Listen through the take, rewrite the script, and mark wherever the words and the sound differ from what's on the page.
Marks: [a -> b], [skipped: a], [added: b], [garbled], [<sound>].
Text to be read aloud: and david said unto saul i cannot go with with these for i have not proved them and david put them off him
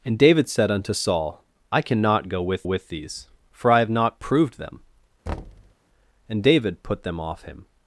and david said unto saul i cannot go with with these for i have not proved them [thud] and david put them off him